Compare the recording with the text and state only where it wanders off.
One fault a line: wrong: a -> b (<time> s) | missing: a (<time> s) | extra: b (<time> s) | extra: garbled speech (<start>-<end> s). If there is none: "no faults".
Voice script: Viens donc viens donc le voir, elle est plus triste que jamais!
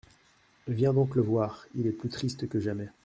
missing: viens donc (1.1 s)
wrong: elle -> il (1.8 s)